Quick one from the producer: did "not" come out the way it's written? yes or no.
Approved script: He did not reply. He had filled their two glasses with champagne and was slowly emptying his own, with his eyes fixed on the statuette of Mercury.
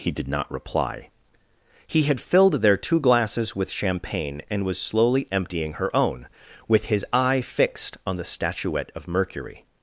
yes